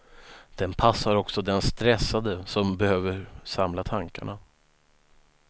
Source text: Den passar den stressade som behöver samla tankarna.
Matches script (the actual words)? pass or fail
fail